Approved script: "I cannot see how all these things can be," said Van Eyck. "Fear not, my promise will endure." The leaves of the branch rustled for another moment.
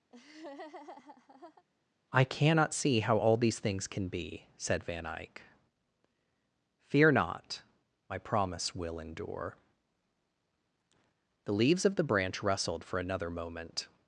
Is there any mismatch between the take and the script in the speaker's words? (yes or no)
no